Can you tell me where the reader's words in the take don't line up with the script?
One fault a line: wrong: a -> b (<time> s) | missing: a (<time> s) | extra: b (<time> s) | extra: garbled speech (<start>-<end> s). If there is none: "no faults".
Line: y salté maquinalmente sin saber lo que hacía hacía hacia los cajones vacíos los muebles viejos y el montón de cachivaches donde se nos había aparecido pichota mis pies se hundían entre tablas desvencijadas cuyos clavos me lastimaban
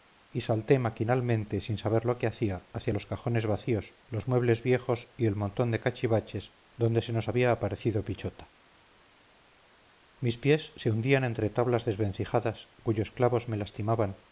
missing: hacía (2.7 s)